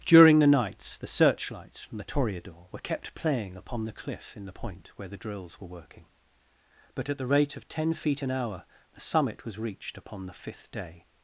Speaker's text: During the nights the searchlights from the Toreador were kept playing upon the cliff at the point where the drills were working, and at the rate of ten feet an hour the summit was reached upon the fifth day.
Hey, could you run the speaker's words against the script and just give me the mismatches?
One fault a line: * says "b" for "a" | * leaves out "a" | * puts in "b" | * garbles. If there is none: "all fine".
* says "in" for "at"
* says "but" for "and"